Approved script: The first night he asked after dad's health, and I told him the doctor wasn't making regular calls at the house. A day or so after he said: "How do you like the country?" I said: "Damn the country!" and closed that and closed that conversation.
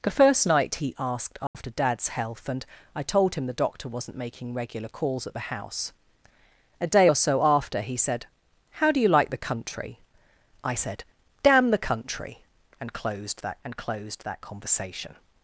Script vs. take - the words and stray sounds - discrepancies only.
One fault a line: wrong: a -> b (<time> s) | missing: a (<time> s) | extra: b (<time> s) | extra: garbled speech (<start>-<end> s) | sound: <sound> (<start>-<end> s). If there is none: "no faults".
sound: dropout (1.5-1.5 s)